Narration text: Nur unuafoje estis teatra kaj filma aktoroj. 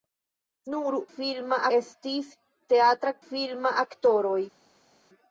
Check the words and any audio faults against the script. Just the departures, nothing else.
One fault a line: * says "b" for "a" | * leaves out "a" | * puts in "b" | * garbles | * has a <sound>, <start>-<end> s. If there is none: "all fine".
* says "filma" for "unuafoje"
* leaves out "kaj"